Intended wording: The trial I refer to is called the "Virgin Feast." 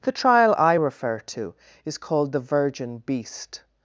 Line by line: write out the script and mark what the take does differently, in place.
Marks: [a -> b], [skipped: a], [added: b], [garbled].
The trial I refer to is called the "Virgin [Feast." -> Beast]